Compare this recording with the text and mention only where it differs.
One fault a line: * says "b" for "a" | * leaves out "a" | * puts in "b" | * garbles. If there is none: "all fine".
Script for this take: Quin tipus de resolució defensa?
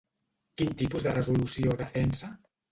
all fine